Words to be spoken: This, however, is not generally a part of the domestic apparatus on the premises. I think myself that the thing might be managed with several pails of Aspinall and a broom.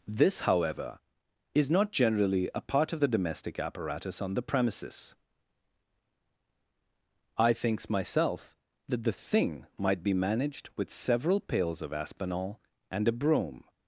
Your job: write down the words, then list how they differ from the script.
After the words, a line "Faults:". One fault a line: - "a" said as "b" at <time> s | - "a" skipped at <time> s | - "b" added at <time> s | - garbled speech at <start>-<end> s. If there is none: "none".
This, however, is not generally a part of the domestic apparatus on the premises. I thinks myself that the thing might be managed with several pails of Aspinall and a broom.
Faults:
- "think" said as "thinks" at 7.5 s